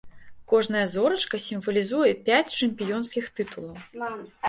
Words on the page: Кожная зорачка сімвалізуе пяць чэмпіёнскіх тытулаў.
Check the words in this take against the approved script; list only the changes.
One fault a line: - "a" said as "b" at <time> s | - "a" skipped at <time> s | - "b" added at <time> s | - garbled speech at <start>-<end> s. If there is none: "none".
none